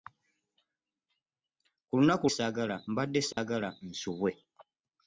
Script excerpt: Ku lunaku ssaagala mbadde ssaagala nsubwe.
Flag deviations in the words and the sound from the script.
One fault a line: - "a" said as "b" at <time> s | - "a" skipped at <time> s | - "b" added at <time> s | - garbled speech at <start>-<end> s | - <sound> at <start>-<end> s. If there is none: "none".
- dropout at 3.3-3.4 s